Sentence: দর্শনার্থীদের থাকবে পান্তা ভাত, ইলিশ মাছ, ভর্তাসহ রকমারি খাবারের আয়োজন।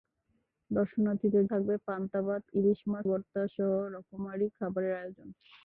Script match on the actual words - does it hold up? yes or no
yes